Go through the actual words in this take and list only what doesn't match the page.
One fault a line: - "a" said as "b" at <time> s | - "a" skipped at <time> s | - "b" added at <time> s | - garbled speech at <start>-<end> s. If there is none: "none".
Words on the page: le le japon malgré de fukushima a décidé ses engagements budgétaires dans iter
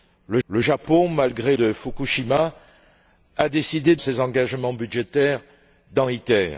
none